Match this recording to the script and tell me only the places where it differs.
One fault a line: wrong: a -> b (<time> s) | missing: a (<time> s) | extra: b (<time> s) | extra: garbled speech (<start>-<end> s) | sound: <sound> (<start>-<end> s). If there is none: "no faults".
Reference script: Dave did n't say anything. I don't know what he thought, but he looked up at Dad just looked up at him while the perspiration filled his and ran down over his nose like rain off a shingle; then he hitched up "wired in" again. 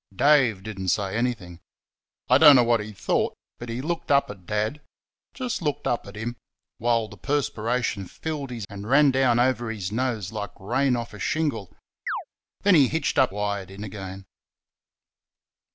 sound: chirp (12.1-12.2 s)